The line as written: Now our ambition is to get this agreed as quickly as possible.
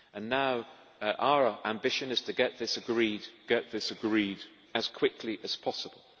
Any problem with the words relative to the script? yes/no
yes